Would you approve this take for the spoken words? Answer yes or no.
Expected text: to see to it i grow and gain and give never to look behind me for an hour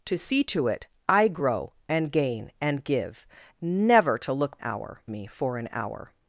no